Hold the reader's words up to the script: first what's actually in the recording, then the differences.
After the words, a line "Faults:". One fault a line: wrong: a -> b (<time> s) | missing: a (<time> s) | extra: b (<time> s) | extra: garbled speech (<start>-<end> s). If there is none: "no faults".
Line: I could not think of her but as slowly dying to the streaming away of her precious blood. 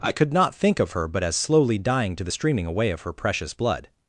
I could not think of her but as slowly dying to the streaming away of her precious blood.
Faults:
no faults